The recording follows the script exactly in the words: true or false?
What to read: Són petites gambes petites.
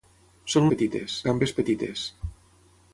true